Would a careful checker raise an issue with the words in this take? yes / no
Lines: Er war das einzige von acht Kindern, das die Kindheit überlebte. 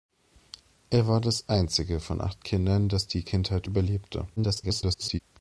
yes